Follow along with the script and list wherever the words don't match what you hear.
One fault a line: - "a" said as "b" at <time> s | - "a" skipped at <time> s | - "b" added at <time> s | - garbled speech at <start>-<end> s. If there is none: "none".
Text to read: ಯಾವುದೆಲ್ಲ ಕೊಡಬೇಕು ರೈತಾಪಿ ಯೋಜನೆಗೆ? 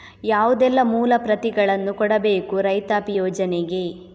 - "ಮೂಲ ಪ್ರತಿಗಳನ್ನು" added at 0.8 s